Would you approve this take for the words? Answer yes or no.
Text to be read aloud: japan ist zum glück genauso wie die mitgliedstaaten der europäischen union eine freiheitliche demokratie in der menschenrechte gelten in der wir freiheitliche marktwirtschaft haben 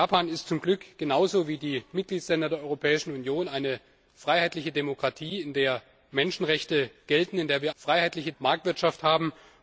yes